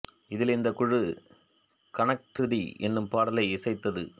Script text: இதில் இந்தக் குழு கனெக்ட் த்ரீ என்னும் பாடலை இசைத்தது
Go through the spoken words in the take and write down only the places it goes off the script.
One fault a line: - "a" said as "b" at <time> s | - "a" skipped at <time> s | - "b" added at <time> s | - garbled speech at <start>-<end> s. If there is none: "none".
none